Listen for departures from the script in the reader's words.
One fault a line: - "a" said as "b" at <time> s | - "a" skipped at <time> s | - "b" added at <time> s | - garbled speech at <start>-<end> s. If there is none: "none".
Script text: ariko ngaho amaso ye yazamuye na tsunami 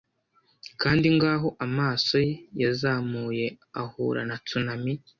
- "ariko" said as "kandi" at 0.8 s
- "ahura" added at 3.8 s